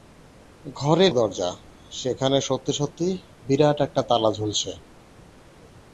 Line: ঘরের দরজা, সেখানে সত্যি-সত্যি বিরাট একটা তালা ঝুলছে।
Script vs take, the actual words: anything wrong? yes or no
no